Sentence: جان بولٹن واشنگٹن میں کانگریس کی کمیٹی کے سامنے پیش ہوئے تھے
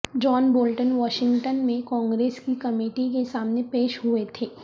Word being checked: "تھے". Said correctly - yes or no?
yes